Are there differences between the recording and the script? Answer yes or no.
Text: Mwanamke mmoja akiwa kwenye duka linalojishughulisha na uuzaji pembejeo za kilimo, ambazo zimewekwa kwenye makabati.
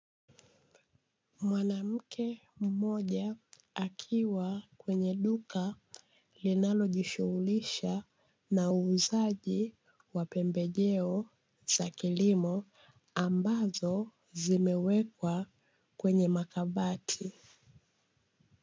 yes